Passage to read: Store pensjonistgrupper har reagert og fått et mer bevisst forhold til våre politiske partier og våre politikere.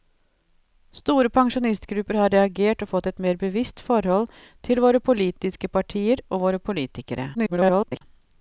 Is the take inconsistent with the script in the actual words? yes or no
yes